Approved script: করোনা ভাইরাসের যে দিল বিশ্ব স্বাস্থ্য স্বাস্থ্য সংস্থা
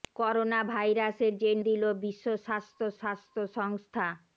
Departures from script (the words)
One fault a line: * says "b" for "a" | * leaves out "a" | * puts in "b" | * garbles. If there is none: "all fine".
all fine